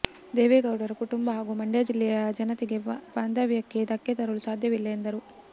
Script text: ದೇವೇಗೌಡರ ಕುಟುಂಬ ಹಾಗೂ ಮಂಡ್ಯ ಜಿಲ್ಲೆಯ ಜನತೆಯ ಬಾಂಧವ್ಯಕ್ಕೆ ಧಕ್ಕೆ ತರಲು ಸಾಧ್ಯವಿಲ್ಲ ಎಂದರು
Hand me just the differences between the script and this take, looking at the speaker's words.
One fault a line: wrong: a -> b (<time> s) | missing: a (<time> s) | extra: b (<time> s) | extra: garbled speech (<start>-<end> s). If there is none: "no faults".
no faults